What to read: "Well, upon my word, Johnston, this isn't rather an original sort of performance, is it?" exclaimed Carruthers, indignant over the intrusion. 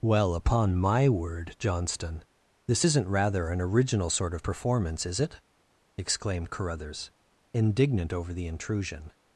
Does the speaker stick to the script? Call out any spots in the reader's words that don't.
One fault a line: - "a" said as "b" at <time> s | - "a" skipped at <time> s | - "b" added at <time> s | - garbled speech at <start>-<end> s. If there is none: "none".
none